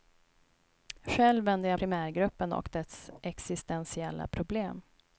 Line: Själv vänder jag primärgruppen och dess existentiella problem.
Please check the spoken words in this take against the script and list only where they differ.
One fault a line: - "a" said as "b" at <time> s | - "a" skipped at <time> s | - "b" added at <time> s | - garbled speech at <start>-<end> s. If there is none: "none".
none